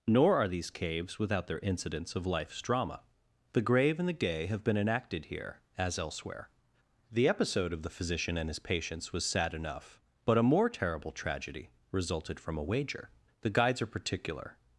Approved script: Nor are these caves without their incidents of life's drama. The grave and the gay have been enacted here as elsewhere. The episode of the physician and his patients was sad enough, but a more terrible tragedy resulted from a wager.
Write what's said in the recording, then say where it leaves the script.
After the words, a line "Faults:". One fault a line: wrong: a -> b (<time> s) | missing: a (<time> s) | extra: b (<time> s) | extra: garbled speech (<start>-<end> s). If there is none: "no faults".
Nor are these caves without their incidents of life's drama. The grave and the gay have been enacted here as elsewhere. The episode of the physician and his patients was sad enough, but a more terrible tragedy resulted from a wager. The guides are particular
Faults:
extra: The guides are particular (13.4 s)